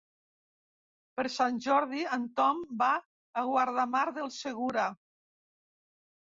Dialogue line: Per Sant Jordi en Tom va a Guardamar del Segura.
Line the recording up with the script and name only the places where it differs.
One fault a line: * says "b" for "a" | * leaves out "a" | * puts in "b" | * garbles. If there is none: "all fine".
all fine